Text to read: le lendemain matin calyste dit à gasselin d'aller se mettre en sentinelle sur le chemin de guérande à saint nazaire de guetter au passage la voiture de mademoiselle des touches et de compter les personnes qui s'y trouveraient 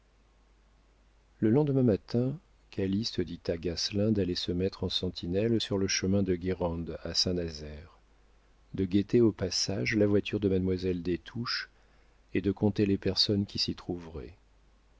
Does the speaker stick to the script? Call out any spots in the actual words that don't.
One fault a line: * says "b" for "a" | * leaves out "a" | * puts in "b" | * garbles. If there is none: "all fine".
all fine